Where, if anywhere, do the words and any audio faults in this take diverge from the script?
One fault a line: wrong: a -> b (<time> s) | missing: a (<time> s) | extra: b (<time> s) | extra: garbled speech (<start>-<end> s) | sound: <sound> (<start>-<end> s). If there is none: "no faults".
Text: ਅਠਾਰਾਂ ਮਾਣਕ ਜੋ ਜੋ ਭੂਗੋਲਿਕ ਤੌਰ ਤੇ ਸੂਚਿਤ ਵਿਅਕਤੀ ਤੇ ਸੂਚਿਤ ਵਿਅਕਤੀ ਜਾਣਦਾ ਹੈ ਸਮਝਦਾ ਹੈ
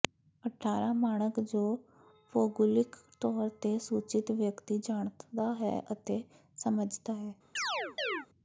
missing: ਜੋ (1.6 s)
missing: ਤੇ ਸੂਚਿਤ ਵਿਅਕਤੀ (4.8 s)
extra: ਅਤੇ (5.9 s)
sound: chirp (7.6-8.3 s)